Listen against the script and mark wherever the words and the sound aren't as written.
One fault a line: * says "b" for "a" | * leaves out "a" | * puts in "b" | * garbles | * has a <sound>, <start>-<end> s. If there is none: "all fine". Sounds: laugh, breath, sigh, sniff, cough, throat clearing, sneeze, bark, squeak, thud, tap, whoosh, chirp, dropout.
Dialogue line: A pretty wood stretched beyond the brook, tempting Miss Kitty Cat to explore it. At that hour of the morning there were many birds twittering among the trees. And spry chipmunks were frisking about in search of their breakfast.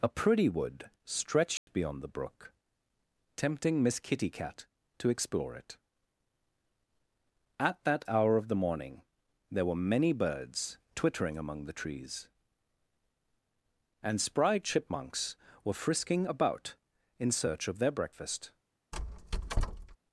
* has a dropout, 1.6-1.7 s
* has a squeak, 18.9-20.0 s